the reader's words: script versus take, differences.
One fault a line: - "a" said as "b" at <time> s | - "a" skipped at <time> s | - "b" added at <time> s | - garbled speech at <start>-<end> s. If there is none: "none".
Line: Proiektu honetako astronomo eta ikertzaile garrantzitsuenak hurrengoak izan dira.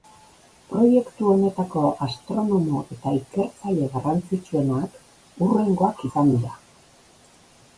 none